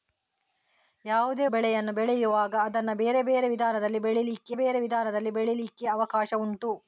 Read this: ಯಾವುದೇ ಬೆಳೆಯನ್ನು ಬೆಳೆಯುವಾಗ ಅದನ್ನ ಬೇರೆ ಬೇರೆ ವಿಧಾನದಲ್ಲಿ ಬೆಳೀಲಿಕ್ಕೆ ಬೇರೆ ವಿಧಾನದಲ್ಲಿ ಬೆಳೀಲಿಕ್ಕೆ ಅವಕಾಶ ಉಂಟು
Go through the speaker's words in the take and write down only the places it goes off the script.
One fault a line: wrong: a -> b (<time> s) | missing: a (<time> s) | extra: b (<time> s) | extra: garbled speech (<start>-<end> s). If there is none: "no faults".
no faults